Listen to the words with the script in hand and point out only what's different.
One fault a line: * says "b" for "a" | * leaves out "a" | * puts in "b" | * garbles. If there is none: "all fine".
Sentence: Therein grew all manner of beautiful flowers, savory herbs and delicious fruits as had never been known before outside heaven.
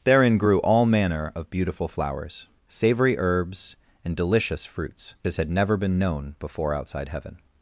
all fine